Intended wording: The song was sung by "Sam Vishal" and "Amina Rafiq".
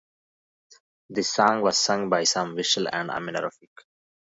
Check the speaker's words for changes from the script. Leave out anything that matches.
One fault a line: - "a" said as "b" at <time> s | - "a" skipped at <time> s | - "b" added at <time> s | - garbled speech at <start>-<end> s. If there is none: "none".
none